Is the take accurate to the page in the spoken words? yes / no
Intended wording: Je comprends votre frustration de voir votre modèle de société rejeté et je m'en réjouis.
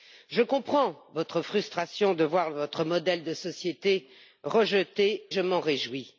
no